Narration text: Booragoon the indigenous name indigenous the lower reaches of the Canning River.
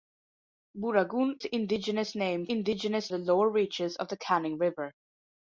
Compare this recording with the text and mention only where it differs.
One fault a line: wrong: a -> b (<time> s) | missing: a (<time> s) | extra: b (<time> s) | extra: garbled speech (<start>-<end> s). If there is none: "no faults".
no faults